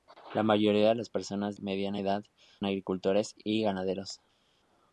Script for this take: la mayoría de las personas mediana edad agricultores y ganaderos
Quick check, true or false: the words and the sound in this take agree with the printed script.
true